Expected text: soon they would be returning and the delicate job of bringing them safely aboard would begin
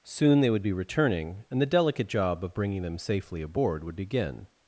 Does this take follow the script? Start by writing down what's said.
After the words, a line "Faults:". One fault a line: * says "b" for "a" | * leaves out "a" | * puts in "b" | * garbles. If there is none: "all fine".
soon they would be returning and the delicate job of bringing them safely aboard would begin
Faults:
all fine